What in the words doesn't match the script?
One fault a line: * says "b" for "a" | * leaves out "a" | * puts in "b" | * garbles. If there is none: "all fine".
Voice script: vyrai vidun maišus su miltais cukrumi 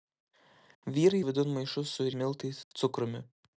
all fine